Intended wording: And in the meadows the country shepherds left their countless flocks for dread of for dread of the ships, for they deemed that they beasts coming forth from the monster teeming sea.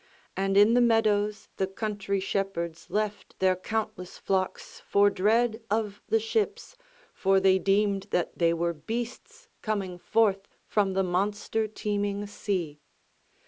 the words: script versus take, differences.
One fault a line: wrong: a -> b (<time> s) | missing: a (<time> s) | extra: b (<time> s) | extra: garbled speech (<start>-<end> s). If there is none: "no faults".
missing: for dread of (6.0 s)
extra: were (8.5 s)